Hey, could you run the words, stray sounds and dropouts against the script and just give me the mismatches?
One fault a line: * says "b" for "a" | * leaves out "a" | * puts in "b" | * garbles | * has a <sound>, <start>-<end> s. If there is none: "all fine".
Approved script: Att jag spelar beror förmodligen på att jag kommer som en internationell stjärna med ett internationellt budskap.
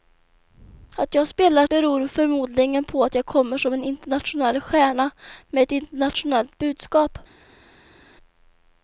all fine